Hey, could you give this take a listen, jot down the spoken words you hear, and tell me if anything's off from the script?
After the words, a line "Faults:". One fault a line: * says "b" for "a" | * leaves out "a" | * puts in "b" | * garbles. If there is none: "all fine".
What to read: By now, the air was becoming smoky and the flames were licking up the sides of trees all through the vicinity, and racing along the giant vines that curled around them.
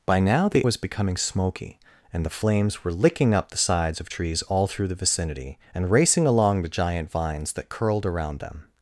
By now, the was becoming smoky and the flames were licking up the sides of trees all through the vicinity, and racing along the giant vines that curled around them.
Faults:
* leaves out "air"